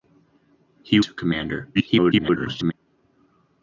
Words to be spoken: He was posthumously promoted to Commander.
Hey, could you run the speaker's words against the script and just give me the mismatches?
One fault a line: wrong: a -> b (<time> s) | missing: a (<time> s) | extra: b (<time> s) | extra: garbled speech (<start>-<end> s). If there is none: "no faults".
missing: was posthumously promoted (1.0 s)
extra: garbled speech (1.7-2.7 s)